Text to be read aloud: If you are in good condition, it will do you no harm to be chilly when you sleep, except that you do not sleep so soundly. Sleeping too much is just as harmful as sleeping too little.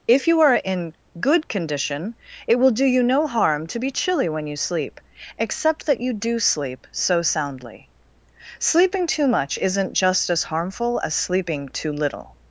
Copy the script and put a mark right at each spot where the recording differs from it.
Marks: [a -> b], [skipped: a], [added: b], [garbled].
If you are in good condition, it will do you no harm to be chilly when you sleep, except that you do [skipped: not] sleep so soundly. Sleeping too much [is -> isn't] just as harmful as sleeping too little.